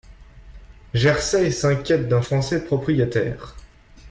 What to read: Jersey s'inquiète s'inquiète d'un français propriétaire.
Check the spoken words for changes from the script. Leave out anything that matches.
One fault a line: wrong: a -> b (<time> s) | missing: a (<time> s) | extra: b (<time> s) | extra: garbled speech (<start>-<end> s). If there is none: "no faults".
missing: s'inquiète (2.1 s)